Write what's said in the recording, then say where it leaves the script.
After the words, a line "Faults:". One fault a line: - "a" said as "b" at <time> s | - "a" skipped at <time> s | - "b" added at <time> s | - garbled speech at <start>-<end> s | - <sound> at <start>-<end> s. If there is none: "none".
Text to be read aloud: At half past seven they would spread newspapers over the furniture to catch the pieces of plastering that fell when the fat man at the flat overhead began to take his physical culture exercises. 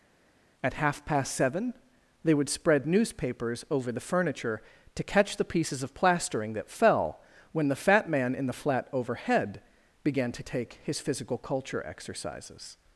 At half past seven they would spread newspapers over the furniture to catch the pieces of plastering that fell when the fat man in the flat overhead began to take his physical culture exercises.
Faults:
- "at" said as "in" at 8.3 s